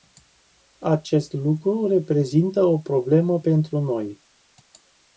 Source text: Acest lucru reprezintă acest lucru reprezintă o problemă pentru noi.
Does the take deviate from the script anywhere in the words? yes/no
yes